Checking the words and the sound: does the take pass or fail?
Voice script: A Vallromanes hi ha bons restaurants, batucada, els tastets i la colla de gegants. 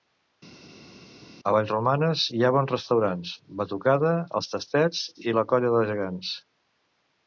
pass